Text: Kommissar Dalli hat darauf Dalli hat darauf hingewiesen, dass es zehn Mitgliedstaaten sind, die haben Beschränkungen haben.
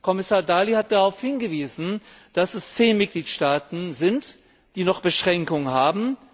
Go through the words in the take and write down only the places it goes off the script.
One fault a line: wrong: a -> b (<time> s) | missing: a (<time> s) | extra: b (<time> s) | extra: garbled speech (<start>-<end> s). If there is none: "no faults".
missing: Dalli hat darauf (1.2 s)
wrong: haben -> noch (4.8 s)